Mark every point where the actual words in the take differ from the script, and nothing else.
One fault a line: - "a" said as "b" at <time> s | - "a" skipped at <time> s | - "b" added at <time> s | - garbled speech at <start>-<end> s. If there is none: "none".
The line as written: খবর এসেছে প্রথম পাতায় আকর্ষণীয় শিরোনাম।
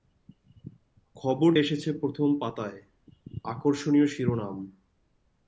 none